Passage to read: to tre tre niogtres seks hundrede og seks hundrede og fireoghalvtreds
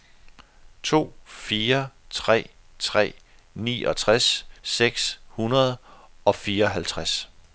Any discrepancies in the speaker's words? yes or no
yes